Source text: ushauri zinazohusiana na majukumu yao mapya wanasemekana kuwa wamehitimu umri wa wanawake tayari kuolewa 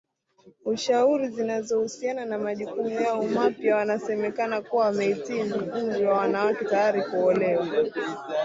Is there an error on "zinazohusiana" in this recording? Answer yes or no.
no